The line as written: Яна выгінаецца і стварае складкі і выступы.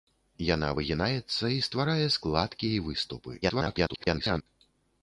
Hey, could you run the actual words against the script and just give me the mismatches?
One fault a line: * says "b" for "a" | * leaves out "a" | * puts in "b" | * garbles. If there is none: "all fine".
* garbles